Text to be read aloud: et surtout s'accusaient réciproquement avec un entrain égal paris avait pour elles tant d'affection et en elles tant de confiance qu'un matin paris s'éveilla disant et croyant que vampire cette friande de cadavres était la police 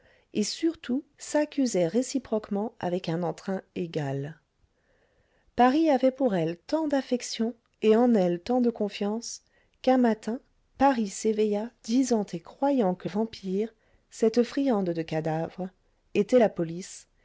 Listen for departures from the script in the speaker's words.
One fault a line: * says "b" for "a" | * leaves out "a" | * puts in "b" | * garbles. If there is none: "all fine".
all fine